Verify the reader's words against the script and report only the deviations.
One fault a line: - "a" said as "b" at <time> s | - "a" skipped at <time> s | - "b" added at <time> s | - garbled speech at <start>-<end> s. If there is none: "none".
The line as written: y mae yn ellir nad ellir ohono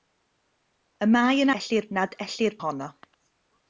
none